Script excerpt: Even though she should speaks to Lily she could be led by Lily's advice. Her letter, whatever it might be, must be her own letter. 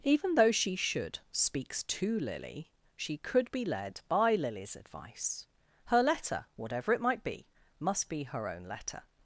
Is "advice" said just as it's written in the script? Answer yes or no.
yes